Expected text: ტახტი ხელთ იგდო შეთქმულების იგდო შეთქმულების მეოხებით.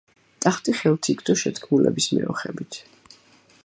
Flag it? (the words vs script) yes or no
yes